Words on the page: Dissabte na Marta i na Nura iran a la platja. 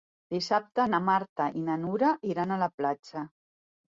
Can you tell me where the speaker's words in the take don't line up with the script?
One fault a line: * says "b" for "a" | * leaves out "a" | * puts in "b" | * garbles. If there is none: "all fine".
all fine